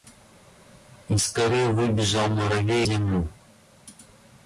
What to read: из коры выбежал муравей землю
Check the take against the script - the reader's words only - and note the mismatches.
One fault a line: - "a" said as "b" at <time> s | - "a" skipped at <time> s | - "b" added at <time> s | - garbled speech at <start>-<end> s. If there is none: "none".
none